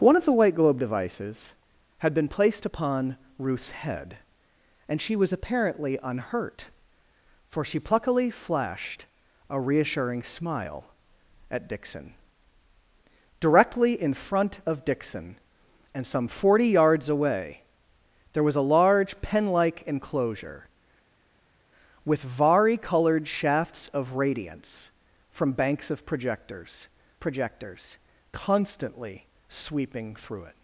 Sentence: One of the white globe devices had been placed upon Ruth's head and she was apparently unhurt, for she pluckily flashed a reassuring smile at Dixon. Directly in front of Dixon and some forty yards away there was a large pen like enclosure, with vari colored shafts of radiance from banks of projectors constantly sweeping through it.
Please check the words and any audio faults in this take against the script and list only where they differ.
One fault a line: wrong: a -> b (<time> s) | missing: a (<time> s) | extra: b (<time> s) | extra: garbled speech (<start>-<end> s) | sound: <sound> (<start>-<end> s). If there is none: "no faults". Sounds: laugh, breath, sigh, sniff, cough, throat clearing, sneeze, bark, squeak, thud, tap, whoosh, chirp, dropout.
extra: projectors (27.2 s)